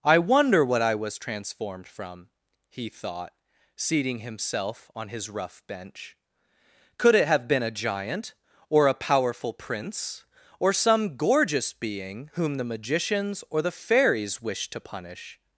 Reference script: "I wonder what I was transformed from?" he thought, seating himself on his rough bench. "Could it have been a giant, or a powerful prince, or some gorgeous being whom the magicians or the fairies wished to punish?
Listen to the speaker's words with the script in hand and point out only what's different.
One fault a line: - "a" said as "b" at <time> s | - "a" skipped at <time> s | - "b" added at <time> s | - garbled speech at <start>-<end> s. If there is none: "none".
none